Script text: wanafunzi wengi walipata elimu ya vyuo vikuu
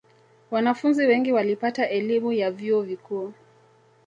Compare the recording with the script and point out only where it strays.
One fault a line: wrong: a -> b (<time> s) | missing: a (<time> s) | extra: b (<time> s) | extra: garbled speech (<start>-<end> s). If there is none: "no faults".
no faults